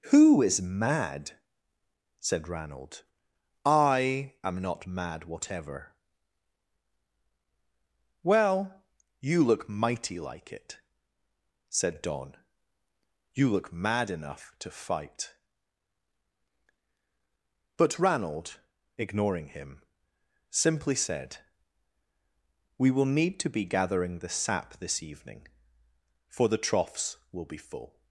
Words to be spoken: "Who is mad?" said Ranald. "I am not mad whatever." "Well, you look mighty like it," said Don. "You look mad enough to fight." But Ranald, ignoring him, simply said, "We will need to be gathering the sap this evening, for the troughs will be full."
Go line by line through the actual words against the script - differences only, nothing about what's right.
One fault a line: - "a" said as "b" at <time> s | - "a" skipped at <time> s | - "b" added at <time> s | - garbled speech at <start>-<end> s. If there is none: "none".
none